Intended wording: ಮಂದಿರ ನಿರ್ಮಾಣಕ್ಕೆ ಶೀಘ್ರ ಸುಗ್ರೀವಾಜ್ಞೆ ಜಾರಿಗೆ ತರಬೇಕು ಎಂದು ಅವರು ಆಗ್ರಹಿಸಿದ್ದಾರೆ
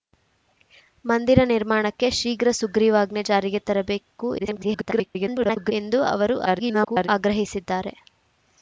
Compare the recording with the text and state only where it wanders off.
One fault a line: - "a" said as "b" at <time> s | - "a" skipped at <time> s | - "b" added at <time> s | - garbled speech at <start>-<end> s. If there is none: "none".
- garbled speech at 4.4-5.7 s
- garbled speech at 6.5-7.1 s